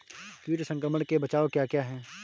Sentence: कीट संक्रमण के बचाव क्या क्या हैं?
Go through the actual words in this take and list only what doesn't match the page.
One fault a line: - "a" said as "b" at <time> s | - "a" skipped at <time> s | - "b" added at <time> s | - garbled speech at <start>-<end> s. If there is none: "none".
none